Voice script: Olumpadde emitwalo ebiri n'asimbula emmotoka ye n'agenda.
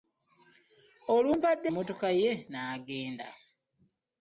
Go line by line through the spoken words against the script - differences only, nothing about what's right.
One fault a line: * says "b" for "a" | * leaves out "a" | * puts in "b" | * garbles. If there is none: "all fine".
* leaves out "emitwalo ebiri n'asimbula"